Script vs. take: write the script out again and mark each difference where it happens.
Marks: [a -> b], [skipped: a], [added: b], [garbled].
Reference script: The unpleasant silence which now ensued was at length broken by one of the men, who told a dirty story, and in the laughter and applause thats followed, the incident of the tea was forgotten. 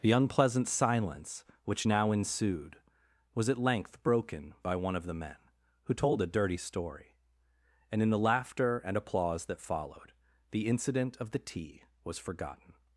The unpleasant silence which now ensued was at length broken by one of the men, who told a dirty story, and in the laughter and applause [thats -> that] followed, the incident of the tea was forgotten.